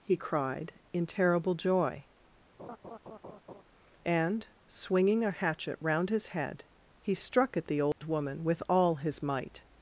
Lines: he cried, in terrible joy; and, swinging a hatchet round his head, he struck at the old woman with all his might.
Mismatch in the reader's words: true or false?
false